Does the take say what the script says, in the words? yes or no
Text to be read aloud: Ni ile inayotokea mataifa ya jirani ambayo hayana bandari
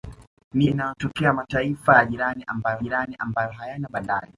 no